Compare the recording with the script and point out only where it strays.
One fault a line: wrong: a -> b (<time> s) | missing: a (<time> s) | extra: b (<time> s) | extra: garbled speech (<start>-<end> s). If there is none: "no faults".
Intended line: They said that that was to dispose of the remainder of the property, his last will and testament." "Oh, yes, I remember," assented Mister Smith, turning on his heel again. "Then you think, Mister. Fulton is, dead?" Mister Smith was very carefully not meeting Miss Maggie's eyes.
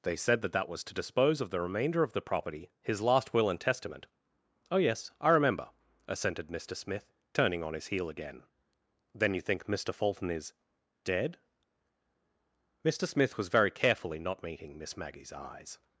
no faults